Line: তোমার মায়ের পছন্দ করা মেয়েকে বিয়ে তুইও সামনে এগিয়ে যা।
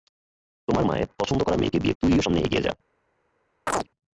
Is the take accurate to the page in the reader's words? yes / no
yes